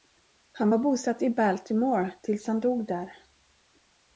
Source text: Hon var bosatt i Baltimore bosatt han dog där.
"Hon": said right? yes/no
no